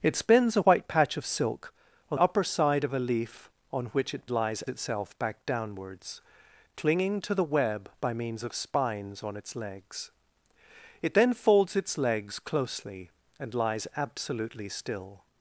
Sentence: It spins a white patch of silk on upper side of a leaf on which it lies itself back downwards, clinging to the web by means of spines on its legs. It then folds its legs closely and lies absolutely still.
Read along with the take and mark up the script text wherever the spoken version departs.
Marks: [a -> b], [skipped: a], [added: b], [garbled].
It spins a white patch of silk on upper side of a leaf on which it lies itself back downwards, clinging to the web by means of spines on its legs. It then folds its legs closely and lies absolutely still.